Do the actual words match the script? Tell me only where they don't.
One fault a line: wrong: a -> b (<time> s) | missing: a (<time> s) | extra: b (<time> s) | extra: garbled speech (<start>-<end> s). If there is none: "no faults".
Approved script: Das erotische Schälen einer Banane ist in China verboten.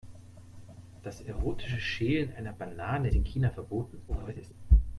missing: ist (3.1 s)
extra: garbled speech (4.1-4.5 s)